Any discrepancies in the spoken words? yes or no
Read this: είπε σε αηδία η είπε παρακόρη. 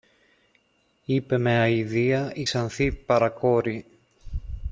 yes